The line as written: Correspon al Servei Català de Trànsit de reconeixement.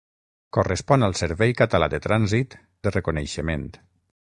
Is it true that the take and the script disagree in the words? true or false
false